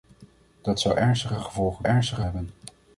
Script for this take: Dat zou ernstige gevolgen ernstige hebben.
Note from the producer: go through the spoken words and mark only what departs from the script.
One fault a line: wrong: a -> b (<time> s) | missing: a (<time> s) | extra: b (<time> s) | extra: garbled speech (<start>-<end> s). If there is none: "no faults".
no faults